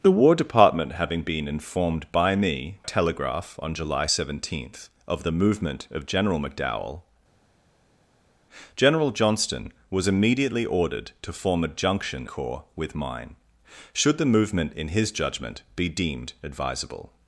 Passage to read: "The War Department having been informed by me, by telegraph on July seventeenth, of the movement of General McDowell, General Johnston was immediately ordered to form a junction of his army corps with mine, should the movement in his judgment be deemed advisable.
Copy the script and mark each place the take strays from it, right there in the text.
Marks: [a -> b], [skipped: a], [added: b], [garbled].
"The War Department having been informed by me, [skipped: by] telegraph on July seventeenth, of the movement of General McDowell, General Johnston was immediately ordered to form a junction [skipped: of his army] corps with mine, should the movement in his judgment be deemed advisable.